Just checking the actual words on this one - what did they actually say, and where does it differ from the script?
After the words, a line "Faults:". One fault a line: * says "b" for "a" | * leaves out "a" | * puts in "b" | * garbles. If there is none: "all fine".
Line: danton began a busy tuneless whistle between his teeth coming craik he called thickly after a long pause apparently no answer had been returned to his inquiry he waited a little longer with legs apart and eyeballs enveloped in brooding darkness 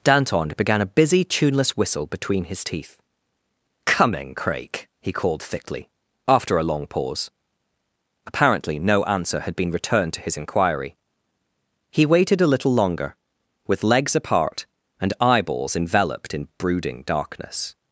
danton began a busy tuneless whistle between his teeth coming craik he called thickly after a long pause apparently no answer had been returned to his inquiry he waited a little longer with legs apart and eyeballs enveloped in brooding darkness
Faults:
all fine